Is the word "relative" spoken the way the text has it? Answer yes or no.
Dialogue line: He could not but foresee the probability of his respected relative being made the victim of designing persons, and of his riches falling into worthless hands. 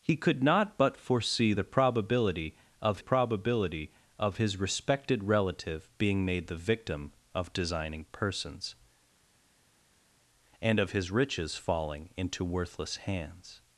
yes